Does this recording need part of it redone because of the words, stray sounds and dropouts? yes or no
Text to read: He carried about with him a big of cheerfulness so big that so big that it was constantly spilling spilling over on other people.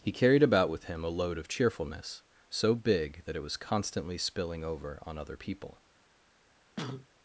yes